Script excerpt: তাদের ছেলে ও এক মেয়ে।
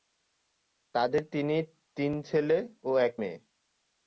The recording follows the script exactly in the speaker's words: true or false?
false